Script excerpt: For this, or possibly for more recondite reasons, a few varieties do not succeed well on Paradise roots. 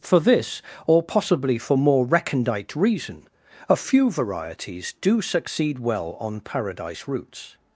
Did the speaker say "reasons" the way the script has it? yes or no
no